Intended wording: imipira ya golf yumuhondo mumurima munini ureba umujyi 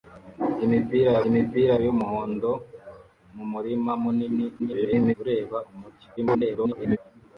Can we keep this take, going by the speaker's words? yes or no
no